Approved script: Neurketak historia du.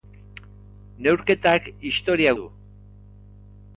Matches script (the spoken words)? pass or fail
pass